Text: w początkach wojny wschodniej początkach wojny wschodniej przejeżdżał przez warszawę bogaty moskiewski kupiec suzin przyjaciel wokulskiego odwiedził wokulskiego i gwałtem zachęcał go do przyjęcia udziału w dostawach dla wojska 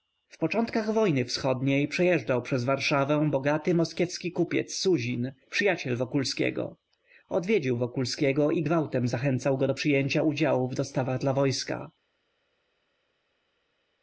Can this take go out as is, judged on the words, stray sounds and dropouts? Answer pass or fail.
fail